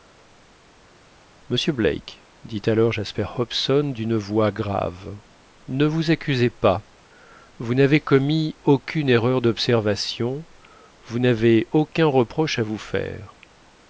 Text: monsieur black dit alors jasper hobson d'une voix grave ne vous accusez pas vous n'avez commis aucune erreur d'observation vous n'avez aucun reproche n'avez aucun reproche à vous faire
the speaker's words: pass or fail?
fail